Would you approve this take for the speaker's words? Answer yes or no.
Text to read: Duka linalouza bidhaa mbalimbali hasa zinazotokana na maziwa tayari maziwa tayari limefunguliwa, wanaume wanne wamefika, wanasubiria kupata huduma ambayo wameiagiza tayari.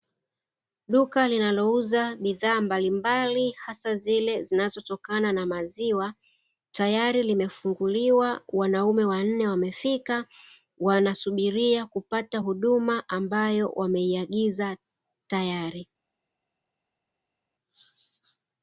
no